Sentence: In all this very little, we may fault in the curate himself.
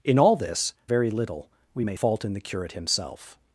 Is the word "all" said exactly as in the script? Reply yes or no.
yes